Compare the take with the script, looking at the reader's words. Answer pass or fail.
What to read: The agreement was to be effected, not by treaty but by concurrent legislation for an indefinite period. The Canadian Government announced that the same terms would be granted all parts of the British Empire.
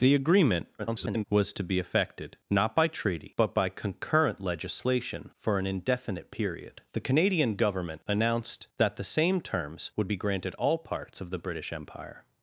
fail